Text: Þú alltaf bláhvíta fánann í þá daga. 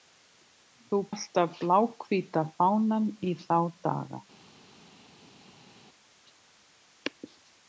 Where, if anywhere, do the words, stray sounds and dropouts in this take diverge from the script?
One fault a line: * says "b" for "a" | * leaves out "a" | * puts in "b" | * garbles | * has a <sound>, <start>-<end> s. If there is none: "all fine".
all fine